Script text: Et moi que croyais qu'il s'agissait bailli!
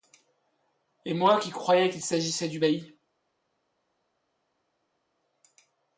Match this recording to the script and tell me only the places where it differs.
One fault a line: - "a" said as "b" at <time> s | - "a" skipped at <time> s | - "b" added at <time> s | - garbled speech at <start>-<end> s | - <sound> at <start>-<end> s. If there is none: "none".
- "que" said as "qui" at 1.4 s
- "du" added at 2.5 s